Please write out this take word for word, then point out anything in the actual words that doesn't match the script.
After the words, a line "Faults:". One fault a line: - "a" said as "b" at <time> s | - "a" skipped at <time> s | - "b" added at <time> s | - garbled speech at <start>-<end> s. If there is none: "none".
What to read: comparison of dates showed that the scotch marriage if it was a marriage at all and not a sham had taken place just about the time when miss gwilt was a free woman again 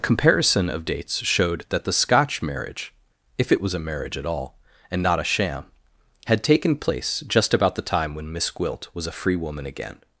comparison of dates showed that the scotch marriage if it was a marriage at all and not a sham had taken place just about the time when miss gwilt was a free woman again
Faults:
none